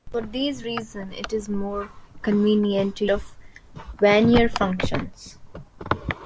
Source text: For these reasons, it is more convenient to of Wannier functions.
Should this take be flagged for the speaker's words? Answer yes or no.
no